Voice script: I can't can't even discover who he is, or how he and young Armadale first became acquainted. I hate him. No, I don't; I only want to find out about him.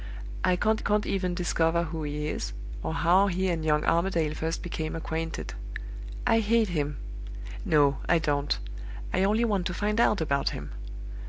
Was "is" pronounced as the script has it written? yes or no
yes